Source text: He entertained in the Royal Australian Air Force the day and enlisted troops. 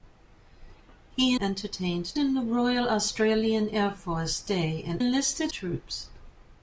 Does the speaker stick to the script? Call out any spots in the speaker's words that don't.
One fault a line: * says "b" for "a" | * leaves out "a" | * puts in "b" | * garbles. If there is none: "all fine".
all fine